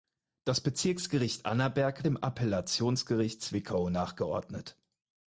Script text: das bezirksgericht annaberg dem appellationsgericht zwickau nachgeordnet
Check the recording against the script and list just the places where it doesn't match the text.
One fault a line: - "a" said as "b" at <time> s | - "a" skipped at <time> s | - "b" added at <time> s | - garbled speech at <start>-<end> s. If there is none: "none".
none